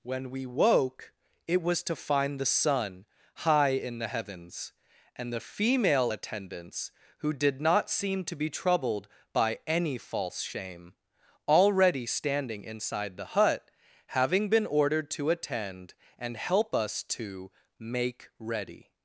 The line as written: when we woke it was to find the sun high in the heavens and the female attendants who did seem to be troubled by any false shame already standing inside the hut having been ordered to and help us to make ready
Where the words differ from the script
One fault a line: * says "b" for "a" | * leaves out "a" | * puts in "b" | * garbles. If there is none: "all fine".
* puts in "not"
* puts in "attend"